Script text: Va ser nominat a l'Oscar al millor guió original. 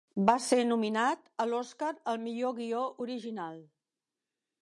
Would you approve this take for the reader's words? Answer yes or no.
yes